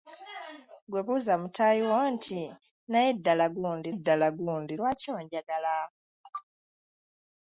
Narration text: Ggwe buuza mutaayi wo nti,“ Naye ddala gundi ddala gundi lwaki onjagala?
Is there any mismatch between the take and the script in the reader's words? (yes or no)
no